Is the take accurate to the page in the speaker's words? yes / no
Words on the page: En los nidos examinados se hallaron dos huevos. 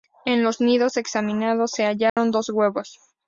yes